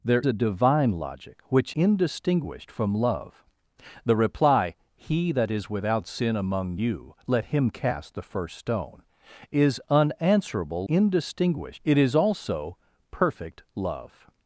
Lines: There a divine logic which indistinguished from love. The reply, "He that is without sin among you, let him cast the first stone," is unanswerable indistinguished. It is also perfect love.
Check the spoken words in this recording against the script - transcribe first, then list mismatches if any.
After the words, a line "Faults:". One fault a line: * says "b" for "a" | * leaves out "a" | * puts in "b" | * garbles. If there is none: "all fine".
There a divine logic which indistinguished from love. The reply, "He that is without sin among you, let him cast the first stone," is unanswerable indistinguished. It is also perfect love.
Faults:
all fine